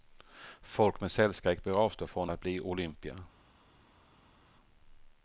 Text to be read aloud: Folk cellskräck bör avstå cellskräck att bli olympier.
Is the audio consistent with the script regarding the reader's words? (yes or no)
no